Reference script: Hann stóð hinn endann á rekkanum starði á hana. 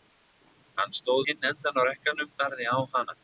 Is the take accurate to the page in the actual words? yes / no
yes